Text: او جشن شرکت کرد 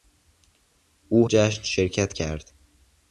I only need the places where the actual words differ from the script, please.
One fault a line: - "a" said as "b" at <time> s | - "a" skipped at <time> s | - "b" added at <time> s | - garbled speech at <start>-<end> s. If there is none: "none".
none